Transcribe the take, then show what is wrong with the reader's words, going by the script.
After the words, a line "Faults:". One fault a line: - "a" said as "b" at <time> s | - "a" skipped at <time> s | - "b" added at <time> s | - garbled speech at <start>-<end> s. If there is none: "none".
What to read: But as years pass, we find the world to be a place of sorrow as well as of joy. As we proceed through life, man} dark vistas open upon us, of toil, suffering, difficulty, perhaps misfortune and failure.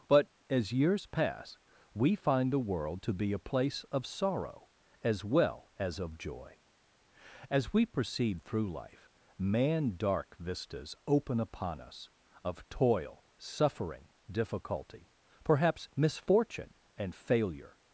But as years pass, we find the world to be a place of sorrow as well as of joy. As we proceed through life, man} dark vistas open upon us, of toil, suffering, difficulty, perhaps misfortune and failure.
Faults:
none